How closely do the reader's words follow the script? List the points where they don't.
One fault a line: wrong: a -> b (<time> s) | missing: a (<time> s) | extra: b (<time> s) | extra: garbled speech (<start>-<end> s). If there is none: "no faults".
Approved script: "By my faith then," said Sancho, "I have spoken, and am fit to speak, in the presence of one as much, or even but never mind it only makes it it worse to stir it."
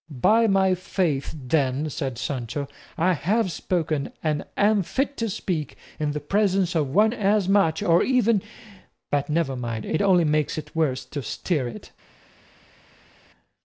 missing: it (10.8 s)